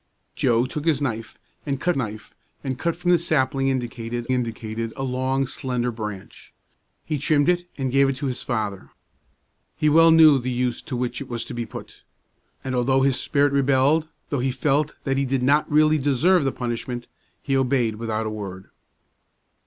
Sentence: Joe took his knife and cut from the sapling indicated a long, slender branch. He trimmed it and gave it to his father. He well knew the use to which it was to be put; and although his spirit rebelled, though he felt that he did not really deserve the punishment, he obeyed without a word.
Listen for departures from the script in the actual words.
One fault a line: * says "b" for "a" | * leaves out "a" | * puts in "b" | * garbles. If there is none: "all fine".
* puts in "knife and cut"
* puts in "indicated"